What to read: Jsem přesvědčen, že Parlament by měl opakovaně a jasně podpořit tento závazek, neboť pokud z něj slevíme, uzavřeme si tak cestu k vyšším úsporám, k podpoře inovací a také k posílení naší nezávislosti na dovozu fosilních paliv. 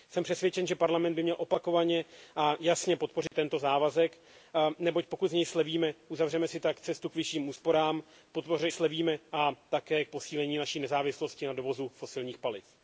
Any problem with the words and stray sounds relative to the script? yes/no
yes